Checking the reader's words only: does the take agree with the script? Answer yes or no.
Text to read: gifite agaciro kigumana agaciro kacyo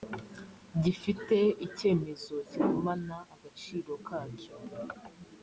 no